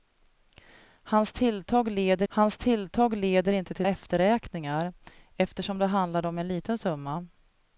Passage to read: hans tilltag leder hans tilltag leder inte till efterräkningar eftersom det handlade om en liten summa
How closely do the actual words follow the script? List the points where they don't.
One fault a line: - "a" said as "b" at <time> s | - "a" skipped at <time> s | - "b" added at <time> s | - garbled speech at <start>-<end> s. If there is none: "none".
none